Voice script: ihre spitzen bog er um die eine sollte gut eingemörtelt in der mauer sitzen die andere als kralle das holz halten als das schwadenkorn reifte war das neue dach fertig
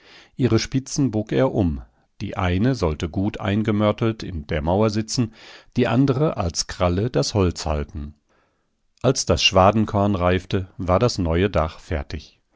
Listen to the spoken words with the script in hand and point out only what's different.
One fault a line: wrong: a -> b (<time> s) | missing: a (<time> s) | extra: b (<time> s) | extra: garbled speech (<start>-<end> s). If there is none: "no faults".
no faults